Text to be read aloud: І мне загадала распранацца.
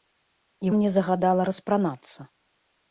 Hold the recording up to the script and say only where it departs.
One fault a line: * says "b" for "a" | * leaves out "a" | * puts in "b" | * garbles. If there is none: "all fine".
all fine